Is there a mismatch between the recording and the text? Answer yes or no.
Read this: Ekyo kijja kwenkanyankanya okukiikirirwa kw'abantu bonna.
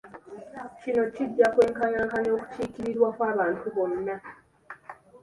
yes